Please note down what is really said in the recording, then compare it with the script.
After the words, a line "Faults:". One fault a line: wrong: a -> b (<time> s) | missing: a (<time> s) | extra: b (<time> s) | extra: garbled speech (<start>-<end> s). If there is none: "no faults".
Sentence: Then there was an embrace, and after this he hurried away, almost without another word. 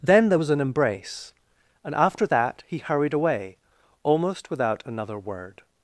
Then there was an embrace, and after that he hurried away, almost without another word.
Faults:
wrong: this -> that (2.3 s)